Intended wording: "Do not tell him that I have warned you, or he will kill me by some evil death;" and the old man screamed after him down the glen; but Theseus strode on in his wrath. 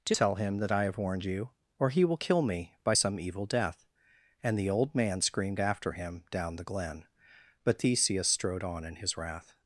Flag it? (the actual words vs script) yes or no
yes